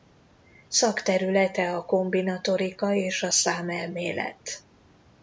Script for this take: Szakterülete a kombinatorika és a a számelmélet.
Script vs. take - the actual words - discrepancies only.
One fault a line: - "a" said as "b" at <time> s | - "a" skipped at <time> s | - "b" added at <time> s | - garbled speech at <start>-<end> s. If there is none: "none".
- "a" skipped at 3.3 s